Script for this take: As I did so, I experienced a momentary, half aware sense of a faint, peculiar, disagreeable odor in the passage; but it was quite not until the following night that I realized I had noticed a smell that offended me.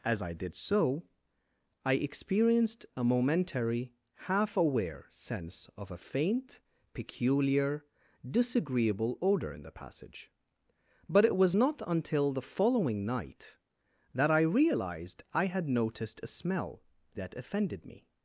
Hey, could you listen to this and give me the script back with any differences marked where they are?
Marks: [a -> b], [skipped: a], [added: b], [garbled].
As I did so, I experienced a momentary, half aware sense of a faint, peculiar, disagreeable odor in the passage; but it was [skipped: quite] not until the following night that I realized I had noticed a smell that offended me.